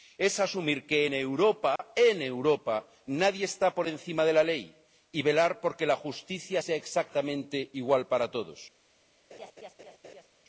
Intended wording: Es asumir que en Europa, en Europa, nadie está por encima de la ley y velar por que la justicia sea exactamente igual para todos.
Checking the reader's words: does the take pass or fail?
pass